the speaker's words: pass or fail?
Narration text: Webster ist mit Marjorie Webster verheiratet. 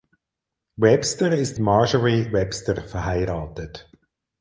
fail